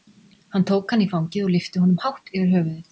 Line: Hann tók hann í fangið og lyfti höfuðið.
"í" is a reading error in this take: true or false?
false